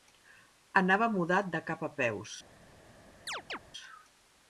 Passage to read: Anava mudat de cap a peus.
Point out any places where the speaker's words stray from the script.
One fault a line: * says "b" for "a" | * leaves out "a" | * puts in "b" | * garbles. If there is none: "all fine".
all fine